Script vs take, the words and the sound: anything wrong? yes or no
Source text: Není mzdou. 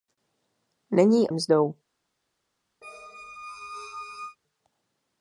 yes